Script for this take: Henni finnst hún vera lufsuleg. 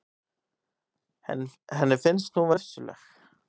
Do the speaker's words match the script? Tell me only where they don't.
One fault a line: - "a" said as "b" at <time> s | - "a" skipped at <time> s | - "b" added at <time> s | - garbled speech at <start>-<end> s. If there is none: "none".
- "vera" skipped at 2.5 s